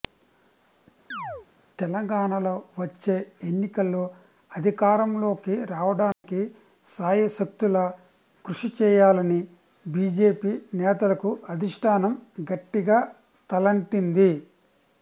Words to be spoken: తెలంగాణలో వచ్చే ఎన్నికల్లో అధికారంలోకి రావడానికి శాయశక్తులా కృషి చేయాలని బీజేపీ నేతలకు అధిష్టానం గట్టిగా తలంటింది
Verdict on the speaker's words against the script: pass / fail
pass